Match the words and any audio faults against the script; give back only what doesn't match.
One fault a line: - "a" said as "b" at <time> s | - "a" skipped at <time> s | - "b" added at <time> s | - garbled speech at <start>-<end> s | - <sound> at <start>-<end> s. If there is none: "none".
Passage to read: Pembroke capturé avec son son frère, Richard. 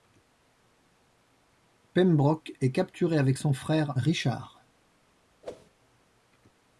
- "est" added at 2.6 s
- "son" skipped at 3.5 s
- whoosh at 5.4-5.7 s